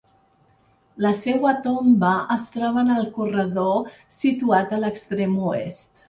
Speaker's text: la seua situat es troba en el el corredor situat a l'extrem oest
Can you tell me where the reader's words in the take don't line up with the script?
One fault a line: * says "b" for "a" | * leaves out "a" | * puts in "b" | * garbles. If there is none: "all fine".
* says "tomba" for "situat"
* leaves out "el"